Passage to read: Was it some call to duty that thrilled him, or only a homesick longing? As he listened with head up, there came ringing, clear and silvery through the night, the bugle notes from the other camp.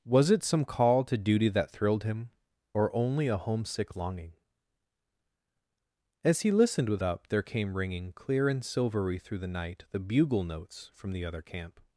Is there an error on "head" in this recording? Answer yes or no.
yes